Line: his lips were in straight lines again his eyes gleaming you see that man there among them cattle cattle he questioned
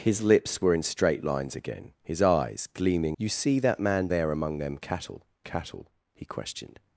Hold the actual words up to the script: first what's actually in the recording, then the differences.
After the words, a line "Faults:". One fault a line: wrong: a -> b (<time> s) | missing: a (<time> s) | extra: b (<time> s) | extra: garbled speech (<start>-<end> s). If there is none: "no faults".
his lips were in straight lines again his eyes gleaming you see that man there among them cattle cattle he questioned
Faults:
no faults